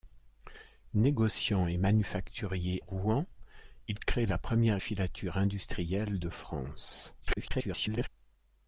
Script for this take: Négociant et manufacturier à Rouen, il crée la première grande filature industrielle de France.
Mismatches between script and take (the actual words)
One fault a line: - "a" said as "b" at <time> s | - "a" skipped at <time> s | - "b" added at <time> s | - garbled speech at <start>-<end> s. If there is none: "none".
- "à" skipped at 2.8 s
- "grande" skipped at 4.8 s
- garbled speech at 7.2-8.1 s